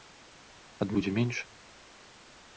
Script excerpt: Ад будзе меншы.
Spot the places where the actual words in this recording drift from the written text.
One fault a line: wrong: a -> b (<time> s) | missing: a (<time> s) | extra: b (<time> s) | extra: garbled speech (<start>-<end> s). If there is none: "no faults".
no faults